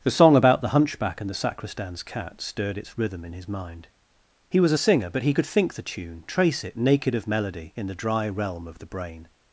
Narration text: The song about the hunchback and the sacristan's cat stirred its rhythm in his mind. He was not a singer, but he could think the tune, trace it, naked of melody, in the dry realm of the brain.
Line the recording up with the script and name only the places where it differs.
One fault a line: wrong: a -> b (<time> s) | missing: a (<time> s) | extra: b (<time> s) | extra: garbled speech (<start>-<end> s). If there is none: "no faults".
missing: not (4.7 s)